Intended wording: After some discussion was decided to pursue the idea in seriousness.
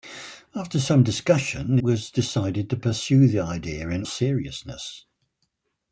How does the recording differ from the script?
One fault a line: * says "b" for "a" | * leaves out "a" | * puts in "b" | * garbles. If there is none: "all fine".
all fine